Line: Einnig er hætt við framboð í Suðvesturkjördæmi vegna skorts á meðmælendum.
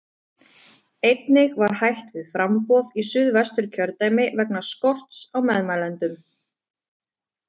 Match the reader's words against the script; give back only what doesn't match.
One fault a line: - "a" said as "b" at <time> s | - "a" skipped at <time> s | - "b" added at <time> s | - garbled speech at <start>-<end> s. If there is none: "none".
- "er" said as "var" at 1.6 s